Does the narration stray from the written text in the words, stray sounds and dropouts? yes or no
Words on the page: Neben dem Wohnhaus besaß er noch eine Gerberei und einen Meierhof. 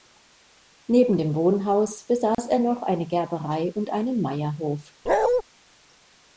yes